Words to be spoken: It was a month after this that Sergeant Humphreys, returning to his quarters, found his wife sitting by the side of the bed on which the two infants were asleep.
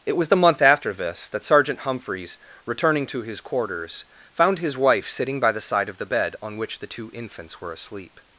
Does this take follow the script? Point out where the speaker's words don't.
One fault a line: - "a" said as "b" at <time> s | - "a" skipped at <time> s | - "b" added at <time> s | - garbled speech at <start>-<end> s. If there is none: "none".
- "a" said as "the" at 0.3 s